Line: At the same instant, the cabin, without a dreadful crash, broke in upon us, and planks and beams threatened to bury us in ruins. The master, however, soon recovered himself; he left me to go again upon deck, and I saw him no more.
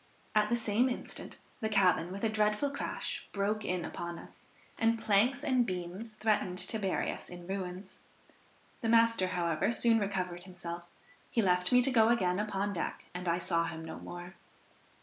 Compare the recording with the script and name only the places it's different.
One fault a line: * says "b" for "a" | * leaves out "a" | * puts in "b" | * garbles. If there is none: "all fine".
* says "with" for "without"